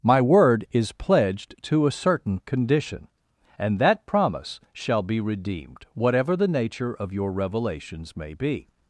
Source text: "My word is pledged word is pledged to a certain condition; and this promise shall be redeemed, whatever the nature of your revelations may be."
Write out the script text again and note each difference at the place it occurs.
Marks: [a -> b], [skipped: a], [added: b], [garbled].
"My word is pledged [skipped: word is pledged] to a certain condition; and [this -> that] promise shall be redeemed, whatever the nature of your revelations may be."